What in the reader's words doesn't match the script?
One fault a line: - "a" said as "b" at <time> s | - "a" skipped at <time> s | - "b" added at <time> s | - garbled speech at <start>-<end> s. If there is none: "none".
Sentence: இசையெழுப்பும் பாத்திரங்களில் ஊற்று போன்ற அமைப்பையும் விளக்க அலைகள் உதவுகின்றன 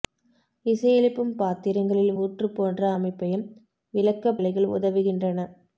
none